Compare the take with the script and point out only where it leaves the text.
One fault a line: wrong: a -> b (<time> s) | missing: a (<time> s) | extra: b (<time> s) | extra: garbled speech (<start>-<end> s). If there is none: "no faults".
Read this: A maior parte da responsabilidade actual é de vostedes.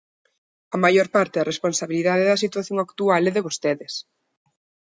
extra: da situación (2.3 s)